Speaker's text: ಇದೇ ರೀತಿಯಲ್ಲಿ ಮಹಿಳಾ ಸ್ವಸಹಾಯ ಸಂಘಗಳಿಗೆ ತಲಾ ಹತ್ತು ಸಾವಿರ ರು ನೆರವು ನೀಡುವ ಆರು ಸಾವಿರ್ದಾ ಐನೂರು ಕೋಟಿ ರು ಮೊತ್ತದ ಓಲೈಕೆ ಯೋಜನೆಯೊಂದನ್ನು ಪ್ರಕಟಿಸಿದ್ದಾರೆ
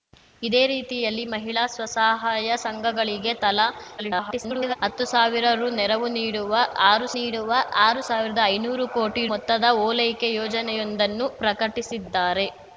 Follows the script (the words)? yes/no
no